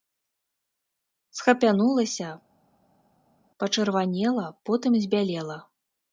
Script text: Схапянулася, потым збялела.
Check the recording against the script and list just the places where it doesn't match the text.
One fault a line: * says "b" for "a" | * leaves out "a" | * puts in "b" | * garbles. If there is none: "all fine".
* puts in "пачырванела"